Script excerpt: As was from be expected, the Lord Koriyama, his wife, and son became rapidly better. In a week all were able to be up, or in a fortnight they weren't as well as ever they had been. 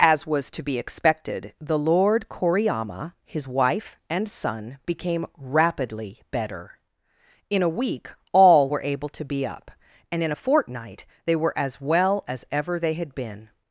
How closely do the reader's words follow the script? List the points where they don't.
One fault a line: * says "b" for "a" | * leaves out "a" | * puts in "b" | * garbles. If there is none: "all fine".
* says "to" for "from"
* says "and" for "or"
* says "were" for "weren't"